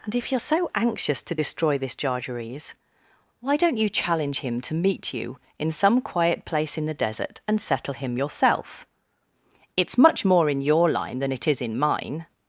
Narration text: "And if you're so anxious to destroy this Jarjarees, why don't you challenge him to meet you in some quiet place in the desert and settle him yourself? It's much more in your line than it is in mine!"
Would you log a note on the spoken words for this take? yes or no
no